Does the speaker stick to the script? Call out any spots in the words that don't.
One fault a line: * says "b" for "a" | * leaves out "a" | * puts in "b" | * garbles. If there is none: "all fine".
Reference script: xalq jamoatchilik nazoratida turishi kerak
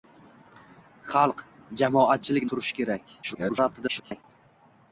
* leaves out "nazoratida"
* garbles